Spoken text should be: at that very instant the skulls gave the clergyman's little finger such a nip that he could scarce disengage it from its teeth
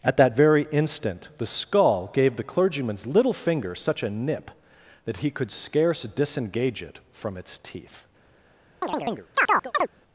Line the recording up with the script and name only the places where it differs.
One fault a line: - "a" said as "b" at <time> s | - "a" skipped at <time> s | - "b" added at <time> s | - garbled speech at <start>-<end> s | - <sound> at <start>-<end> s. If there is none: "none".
- "skulls" said as "skull" at 1.5 s
- chirp at 8.8-9.9 s